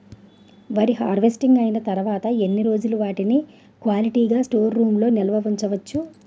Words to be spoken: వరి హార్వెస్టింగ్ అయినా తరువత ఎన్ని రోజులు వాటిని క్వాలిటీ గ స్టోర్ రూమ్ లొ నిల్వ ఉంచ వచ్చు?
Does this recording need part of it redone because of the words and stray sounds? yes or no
no